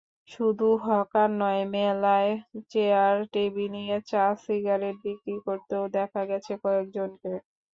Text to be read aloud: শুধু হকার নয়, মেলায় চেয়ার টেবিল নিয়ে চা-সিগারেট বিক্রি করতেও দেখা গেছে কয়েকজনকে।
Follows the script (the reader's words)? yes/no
yes